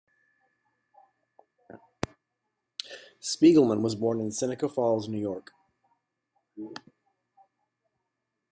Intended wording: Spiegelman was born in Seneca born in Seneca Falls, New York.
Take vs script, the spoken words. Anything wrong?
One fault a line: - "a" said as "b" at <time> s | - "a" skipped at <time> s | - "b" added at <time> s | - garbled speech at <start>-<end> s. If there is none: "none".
- "born in Seneca" skipped at 4.7 s